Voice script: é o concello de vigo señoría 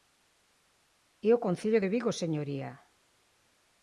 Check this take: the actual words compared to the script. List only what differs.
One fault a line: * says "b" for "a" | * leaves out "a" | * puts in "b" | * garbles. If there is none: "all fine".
all fine